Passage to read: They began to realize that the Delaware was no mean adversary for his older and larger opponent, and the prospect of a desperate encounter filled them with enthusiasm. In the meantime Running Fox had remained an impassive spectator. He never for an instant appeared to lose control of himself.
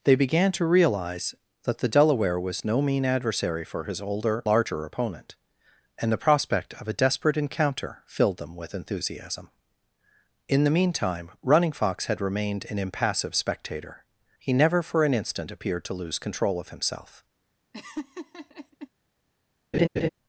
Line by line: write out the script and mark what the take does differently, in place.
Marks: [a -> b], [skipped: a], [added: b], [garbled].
They began to realize that the Delaware was no mean adversary for his older [skipped: and] larger opponent, and the prospect of a desperate encounter filled them with enthusiasm. In the meantime Running Fox had remained an impassive spectator. He never for an instant appeared to lose control of himself.